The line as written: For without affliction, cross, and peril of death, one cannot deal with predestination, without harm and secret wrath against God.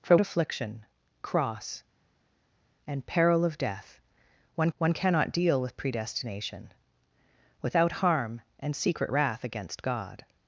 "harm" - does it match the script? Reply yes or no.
yes